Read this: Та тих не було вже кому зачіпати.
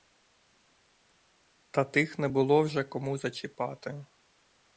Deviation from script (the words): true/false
false